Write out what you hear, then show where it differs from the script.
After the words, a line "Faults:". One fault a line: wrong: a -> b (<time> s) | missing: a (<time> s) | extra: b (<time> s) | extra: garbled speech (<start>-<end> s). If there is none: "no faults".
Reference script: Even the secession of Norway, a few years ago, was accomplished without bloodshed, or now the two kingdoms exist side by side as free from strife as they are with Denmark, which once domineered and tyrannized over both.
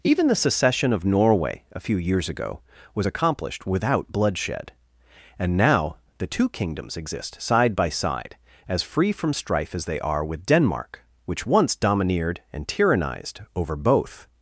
Even the secession of Norway, a few years ago, was accomplished without bloodshed, and now the two kingdoms exist side by side as free from strife as they are with Denmark, which once domineered and tyrannized over both.
Faults:
wrong: or -> and (5.4 s)